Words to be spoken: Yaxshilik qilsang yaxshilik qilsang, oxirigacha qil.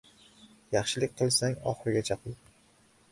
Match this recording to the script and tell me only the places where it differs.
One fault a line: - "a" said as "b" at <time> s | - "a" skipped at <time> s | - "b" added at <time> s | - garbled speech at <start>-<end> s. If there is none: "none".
- "yaxshilik qilsang" skipped at 1.6 s